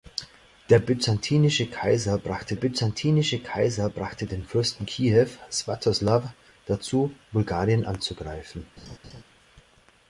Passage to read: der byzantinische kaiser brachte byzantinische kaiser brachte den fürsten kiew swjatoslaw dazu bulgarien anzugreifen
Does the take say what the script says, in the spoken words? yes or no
yes